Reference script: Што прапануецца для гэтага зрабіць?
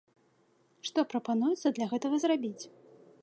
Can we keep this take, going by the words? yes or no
yes